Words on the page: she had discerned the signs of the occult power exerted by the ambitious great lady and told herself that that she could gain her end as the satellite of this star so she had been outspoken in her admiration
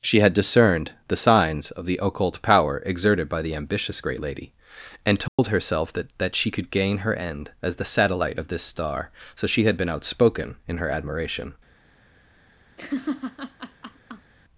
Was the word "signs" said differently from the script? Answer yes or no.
no